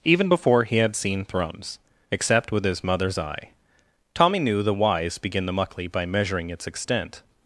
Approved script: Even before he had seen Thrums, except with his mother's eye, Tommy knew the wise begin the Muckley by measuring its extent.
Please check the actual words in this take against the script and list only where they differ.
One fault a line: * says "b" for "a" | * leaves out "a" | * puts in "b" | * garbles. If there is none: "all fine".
all fine